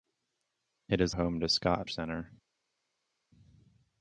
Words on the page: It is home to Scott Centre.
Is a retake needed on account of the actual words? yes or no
no